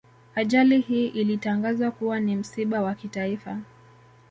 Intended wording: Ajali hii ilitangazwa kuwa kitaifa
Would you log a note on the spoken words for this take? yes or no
yes